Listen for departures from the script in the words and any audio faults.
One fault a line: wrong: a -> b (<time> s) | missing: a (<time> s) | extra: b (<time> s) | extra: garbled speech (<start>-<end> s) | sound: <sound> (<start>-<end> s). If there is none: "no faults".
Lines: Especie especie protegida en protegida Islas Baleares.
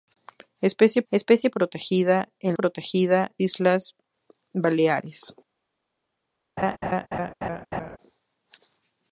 sound: laugh (6.6-8.0 s)